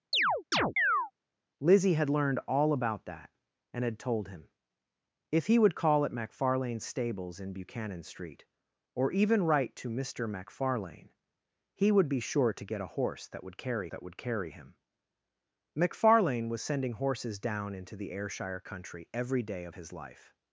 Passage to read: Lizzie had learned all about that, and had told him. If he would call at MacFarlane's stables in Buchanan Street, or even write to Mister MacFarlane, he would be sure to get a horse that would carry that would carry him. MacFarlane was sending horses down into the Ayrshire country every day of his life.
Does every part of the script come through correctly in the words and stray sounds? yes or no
no